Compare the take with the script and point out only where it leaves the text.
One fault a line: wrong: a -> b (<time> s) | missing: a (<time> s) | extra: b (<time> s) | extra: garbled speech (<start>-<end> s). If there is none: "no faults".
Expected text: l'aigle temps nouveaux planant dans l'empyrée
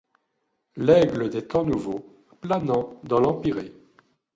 extra: des (1.3 s)